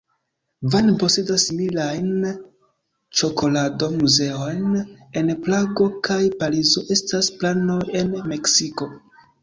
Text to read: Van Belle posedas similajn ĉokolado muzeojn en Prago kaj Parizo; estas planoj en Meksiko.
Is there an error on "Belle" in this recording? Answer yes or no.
yes